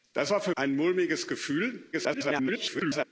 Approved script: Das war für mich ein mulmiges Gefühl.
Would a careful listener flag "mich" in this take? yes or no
yes